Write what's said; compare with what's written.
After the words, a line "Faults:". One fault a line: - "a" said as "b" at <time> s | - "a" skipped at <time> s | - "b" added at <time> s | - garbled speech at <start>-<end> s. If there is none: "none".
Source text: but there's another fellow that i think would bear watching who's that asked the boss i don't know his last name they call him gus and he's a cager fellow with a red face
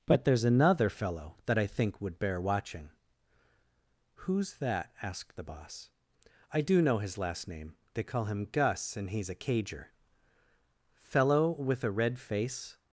but there's another fellow that i think would bear watching who's that asked the boss i do know his last name they call him gus and he's a cager fellow with a red face
Faults:
- "don't" said as "do" at 6.6 s